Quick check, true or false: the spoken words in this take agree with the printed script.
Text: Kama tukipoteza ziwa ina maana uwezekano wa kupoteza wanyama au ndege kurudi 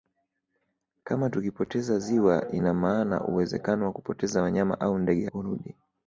true